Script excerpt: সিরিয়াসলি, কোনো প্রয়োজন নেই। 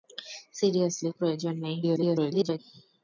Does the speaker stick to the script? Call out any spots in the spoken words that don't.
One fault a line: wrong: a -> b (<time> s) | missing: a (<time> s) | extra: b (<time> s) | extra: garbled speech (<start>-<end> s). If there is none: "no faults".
missing: কোনো (1.1 s)
extra: garbled speech (1.8-2.6 s)